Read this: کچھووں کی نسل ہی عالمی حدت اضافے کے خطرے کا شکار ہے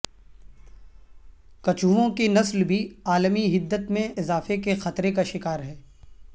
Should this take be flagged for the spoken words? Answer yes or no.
yes